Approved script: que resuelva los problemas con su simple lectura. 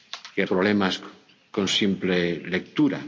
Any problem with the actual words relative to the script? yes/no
yes